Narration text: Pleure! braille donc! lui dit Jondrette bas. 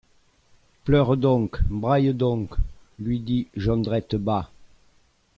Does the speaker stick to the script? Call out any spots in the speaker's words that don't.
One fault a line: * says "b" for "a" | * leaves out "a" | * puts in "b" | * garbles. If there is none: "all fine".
* puts in "donc"